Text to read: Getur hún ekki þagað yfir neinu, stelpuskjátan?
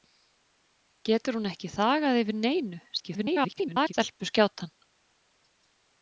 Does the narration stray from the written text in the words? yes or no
yes